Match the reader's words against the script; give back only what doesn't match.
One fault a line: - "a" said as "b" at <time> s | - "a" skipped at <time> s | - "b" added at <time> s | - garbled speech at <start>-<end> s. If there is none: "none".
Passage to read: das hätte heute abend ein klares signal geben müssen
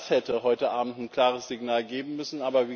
none